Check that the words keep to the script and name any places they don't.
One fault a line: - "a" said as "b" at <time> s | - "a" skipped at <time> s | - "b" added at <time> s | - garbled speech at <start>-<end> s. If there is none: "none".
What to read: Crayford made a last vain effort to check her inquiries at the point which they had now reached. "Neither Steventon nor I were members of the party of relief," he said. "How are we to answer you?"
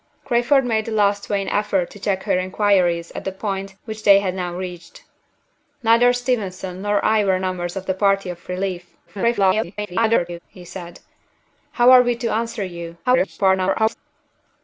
- garbled speech at 9.1-10.4 s
- garbled speech at 13.0-13.9 s